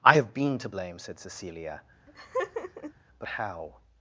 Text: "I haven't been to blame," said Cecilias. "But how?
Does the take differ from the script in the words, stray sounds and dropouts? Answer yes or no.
yes